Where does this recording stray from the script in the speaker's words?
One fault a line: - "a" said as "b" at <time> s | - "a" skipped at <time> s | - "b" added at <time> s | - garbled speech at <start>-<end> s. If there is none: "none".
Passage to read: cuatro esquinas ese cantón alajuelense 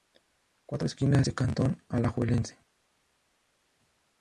none